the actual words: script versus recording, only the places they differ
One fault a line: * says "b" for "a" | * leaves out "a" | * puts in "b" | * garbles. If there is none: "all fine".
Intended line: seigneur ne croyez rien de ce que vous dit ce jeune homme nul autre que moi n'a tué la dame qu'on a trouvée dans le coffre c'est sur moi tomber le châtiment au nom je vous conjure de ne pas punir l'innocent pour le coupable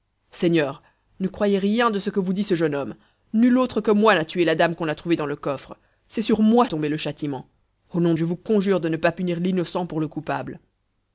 all fine